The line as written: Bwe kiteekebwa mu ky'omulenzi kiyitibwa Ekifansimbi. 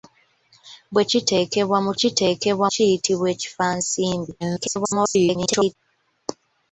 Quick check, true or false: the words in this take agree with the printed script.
false